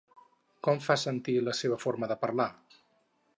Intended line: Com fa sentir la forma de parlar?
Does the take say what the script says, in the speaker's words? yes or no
no